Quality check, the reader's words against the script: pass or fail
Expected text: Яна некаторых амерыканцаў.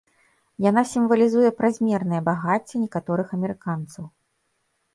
fail